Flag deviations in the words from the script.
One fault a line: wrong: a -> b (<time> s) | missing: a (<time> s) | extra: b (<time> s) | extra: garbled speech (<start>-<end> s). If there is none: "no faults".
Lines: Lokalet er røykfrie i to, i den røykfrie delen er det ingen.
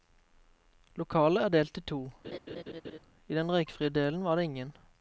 wrong: røykfrie -> delt (1.5 s)
wrong: er -> var (4.3 s)